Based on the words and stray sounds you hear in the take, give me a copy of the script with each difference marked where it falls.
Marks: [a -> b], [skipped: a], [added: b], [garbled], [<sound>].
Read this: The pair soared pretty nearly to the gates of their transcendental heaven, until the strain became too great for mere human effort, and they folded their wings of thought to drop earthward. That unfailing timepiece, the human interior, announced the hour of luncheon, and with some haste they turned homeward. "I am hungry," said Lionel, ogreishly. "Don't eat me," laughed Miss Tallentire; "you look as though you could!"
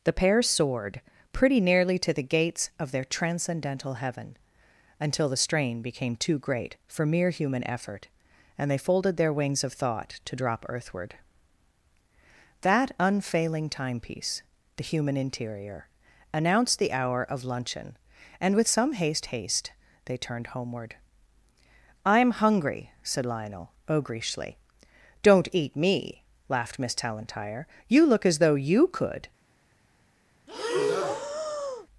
The pair soared pretty nearly to the gates of their transcendental heaven, until the strain became too great for mere human effort, and they folded their wings of thought to drop earthward. That unfailing timepiece, the human interior, announced the hour of luncheon, and with some haste [added: haste] they turned homeward. "I am hungry," said Lionel, ogreishly. "Don't eat me," laughed Miss Tallentire; "you look as though you could!" [breath]